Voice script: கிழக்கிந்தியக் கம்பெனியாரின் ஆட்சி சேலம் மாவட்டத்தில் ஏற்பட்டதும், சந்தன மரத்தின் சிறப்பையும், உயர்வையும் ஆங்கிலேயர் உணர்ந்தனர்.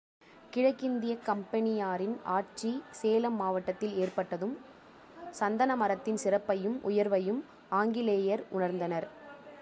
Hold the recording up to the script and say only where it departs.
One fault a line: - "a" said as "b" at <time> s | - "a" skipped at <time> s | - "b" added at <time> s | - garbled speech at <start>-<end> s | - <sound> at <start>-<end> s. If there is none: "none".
none